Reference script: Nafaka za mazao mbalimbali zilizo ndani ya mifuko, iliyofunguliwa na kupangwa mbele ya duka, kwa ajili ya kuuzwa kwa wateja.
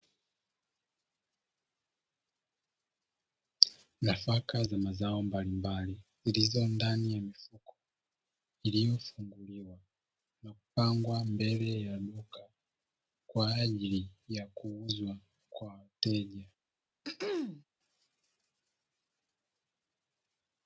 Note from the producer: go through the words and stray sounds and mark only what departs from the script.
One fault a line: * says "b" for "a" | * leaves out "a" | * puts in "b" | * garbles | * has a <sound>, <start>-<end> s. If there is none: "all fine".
* has a throat clearing, 17.0-17.6 s